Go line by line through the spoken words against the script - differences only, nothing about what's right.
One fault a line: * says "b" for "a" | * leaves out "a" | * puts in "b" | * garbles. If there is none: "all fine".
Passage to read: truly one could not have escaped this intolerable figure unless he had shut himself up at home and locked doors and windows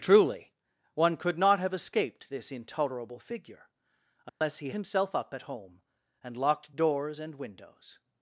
* leaves out "had shut"